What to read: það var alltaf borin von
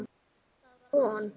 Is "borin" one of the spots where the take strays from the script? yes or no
yes